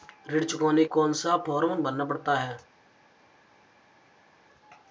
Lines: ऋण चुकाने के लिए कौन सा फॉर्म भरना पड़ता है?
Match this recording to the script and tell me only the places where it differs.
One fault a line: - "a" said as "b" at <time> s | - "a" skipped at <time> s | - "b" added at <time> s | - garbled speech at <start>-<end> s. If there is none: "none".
- "के लिए" skipped at 0.8 s